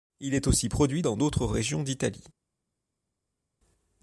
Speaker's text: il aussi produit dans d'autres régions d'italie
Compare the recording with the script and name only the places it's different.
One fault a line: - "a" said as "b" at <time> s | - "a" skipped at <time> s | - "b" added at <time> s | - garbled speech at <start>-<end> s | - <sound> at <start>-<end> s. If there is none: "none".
- "est" added at 0.3 s